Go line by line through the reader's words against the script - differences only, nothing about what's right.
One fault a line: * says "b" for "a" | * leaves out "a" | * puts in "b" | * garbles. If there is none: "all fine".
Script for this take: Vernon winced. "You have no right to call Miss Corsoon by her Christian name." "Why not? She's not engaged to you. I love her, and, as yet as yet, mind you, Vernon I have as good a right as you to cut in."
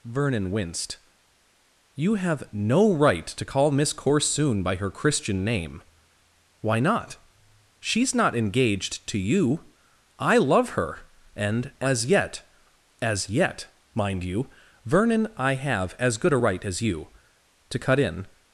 all fine